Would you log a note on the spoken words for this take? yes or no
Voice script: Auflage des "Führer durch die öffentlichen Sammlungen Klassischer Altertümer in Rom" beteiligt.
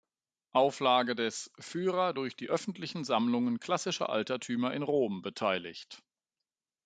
no